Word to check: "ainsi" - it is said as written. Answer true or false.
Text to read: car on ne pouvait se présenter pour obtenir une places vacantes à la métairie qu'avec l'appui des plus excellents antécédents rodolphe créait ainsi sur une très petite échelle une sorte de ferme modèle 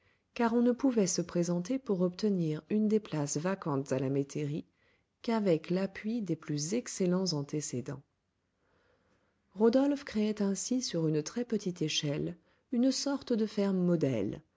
true